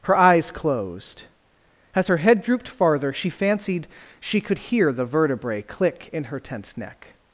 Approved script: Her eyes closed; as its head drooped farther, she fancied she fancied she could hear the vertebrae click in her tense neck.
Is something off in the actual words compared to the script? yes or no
yes